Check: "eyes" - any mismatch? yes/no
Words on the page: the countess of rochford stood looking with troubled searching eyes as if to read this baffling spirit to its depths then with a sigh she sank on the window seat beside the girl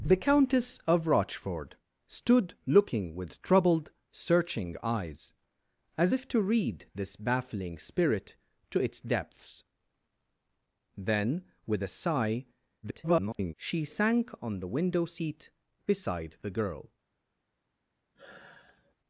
no